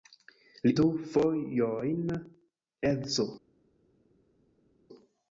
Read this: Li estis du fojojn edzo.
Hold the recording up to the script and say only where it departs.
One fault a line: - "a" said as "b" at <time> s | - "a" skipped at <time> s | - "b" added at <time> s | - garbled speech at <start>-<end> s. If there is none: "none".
- "estis" skipped at 0.7 s